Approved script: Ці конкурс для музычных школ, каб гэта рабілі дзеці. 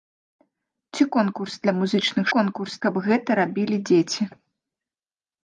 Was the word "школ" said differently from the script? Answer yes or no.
yes